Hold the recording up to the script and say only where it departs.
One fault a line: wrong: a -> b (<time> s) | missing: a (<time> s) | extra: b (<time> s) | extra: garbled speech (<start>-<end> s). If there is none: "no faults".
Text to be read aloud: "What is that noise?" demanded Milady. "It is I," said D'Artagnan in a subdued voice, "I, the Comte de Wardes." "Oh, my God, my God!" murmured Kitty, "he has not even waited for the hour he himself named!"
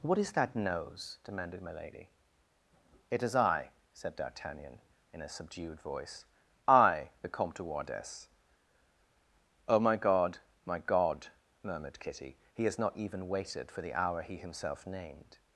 wrong: noise -> nose (0.6 s)